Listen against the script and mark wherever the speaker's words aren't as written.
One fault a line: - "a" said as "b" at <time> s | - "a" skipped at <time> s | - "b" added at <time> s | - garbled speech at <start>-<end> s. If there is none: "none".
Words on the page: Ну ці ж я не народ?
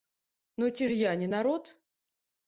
none